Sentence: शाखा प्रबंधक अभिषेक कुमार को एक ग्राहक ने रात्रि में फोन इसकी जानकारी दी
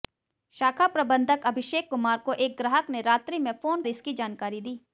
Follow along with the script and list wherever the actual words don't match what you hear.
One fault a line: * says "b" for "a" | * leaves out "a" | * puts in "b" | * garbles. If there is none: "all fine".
all fine